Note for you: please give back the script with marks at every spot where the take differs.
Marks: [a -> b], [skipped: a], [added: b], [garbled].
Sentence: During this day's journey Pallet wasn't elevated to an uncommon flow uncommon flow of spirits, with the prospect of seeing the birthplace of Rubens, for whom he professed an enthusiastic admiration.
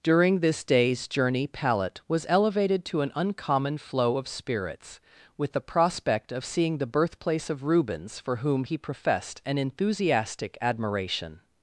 During this day's journey Pallet [wasn't -> was] elevated to an uncommon flow [skipped: uncommon flow] of spirits, with the prospect of seeing the birthplace of Rubens, for whom he professed an enthusiastic admiration.